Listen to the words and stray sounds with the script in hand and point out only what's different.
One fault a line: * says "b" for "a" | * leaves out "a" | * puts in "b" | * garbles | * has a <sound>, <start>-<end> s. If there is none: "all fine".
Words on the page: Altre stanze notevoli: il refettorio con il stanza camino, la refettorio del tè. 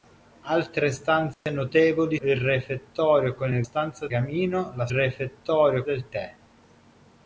* has a dropout, 1.3-1.5 s